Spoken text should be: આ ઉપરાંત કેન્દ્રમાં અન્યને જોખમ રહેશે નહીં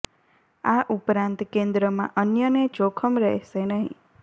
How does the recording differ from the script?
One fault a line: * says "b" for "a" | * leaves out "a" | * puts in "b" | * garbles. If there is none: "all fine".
all fine